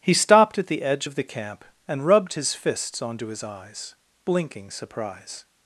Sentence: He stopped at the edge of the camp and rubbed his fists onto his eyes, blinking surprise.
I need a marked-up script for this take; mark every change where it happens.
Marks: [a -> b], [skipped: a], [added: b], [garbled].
He stopped at the edge of the camp and rubbed his fists onto his eyes, blinking surprise.